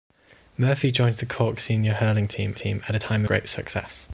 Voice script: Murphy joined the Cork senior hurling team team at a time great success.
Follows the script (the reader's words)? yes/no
yes